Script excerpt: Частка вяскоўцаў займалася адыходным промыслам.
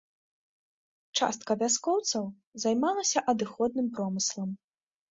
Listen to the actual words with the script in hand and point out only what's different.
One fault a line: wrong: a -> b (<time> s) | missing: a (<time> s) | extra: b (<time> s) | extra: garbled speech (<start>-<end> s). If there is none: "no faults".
no faults